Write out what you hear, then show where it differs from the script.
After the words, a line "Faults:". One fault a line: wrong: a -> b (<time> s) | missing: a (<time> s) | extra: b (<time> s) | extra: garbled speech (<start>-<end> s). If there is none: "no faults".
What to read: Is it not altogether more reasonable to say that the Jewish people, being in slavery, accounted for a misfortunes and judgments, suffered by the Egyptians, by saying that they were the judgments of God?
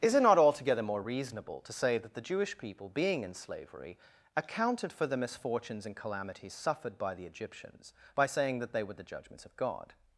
Is it not altogether more reasonable to say that the Jewish people, being in slavery, accounted for the misfortunes and calamities, suffered by the Egyptians, by saying that they were the judgments of God?
Faults:
wrong: a -> the (5.1 s)
wrong: judgments -> calamities (6.0 s)